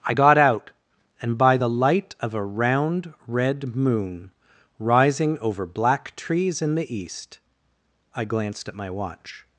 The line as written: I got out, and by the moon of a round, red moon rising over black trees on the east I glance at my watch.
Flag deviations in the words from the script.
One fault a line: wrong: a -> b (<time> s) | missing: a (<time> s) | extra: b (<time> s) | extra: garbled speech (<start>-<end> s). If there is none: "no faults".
wrong: moon -> light (1.7 s)
wrong: on -> in (6.6 s)
wrong: glance -> glanced (8.2 s)